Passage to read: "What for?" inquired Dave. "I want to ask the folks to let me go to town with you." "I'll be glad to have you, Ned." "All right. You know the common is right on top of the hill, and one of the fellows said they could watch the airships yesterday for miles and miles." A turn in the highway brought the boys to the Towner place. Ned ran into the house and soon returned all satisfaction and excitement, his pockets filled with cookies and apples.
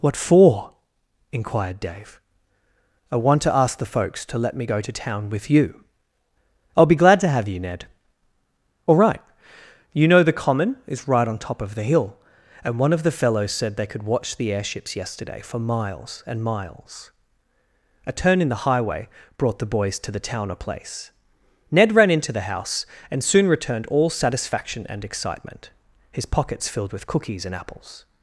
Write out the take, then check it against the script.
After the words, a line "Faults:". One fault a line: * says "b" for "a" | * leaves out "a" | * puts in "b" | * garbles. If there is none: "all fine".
"What for?" inquired Dave. "I want to ask the folks to let me go to town with you." "I'll be glad to have you, Ned." "All right. You know the common is right on top of the hill, and one of the fellows said they could watch the airships yesterday for miles and miles." A turn in the highway brought the boys to the Towner place. Ned ran into the house and soon returned all satisfaction and excitement, his pockets filled with cookies and apples.
Faults:
all fine